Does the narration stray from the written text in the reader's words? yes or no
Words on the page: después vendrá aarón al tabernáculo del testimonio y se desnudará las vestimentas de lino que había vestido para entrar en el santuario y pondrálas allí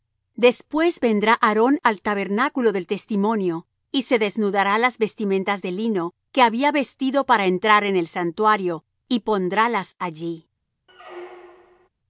no